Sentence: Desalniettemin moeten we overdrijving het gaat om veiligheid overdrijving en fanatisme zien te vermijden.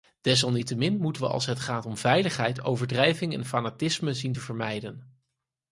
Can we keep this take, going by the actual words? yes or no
no